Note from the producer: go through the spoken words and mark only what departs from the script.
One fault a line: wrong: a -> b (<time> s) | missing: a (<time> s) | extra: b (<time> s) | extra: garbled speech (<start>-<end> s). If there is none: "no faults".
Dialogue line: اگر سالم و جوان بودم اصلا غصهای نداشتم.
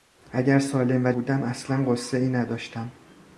missing: جوان (1.1 s)